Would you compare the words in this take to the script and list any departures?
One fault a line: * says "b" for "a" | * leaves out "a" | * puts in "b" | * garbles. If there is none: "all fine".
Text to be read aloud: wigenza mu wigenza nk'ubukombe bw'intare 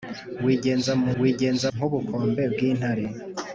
all fine